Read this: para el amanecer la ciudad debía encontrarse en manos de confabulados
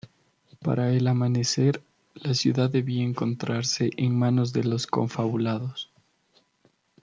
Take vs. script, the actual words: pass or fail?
fail